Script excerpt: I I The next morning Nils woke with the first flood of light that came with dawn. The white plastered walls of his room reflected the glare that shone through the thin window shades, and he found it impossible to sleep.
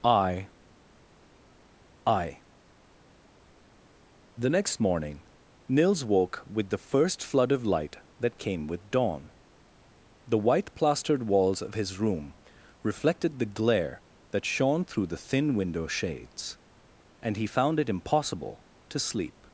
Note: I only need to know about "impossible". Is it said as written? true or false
true